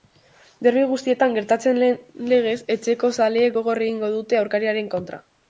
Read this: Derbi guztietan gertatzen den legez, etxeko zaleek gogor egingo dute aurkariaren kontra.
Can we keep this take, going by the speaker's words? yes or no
yes